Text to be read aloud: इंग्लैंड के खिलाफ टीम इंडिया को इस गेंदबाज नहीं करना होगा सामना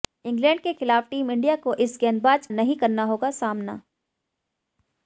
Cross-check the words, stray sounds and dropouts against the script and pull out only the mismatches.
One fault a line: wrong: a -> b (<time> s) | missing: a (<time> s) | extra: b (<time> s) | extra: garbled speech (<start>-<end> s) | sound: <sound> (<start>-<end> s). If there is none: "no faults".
no faults